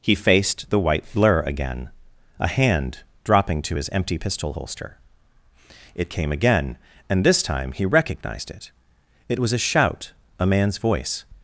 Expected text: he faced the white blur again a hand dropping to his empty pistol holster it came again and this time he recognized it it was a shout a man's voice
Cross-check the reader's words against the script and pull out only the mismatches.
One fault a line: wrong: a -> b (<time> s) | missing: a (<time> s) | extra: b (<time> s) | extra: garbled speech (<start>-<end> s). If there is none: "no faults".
no faults